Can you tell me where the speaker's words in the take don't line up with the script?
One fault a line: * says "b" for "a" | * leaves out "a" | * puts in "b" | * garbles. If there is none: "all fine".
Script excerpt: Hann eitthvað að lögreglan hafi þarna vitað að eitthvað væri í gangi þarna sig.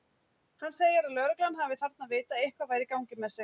* says "segir" for "eitthvað"
* says "með" for "þarna"